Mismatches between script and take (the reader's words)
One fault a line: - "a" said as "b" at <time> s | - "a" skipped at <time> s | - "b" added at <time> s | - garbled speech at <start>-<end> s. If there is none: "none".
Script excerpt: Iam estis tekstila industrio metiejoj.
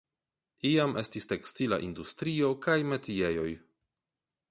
- "kaj" added at 2.7 s